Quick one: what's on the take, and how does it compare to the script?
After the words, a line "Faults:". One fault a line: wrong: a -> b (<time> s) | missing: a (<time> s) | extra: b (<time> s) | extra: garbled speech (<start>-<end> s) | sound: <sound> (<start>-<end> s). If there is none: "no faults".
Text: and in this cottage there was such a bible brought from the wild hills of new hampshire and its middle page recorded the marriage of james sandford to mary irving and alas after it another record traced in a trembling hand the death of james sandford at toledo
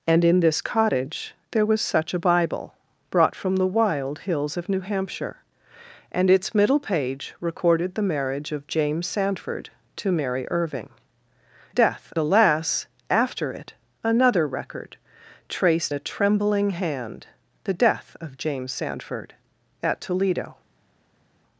and in this cottage there was such a bible brought from the wild hills of new hampshire and its middle page recorded the marriage of james sandford to mary irving death alas after it another record traced a trembling hand the death of james sandford at toledo
Faults:
wrong: and -> death (11.7 s)
missing: in (15.9 s)